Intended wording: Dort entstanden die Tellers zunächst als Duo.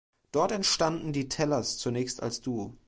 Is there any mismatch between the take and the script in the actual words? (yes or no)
no